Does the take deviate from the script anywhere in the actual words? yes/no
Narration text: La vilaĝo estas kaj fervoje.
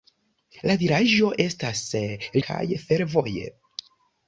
no